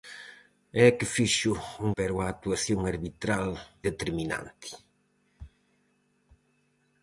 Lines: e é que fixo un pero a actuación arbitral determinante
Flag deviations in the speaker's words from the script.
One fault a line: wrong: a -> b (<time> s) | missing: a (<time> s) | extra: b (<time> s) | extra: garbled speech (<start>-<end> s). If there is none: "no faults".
no faults